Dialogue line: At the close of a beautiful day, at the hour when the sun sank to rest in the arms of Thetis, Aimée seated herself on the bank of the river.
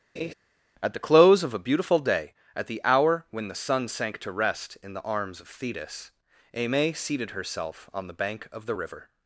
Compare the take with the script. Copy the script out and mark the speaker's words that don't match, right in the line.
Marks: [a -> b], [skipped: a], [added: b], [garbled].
At the close of a beautiful day, at the hour when the sun sank to rest in the arms of Thetis, Aimée seated herself on the bank of the river.